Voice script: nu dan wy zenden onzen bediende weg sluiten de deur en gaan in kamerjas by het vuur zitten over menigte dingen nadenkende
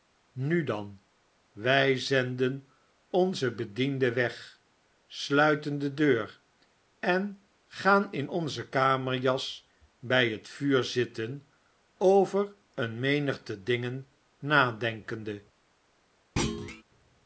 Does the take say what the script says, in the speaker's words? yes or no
no